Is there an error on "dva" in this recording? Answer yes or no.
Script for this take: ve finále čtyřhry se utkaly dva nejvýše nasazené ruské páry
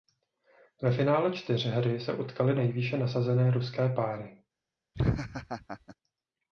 yes